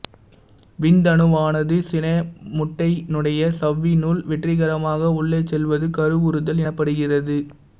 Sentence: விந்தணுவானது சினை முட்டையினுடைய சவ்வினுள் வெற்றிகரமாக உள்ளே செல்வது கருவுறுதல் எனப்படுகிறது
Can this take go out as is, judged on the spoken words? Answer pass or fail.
pass